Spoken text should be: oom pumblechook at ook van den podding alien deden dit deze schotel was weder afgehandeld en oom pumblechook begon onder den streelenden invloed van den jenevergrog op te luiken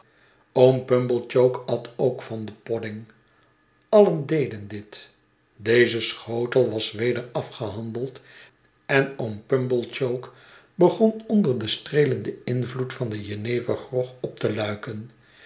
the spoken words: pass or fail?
pass